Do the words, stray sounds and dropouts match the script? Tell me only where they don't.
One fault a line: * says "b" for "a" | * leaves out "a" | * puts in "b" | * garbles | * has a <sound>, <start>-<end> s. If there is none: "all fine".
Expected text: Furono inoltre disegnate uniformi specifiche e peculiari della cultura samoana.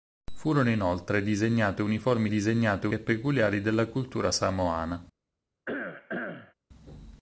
* says "disegnate" for "specifiche"
* has a cough, 5.7-6.5 s